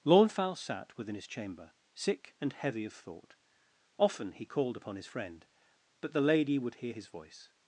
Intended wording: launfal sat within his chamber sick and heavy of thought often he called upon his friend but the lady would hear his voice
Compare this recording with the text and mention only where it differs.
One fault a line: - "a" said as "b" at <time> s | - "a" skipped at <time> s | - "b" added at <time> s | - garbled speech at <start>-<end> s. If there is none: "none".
none